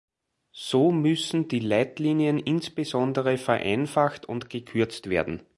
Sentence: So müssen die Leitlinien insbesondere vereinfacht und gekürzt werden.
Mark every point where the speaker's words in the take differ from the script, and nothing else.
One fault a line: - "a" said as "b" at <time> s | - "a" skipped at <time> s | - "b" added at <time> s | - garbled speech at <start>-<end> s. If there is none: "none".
none